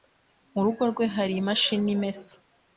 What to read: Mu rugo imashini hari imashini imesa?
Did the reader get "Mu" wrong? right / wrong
right